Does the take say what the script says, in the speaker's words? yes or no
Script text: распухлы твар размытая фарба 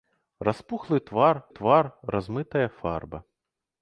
no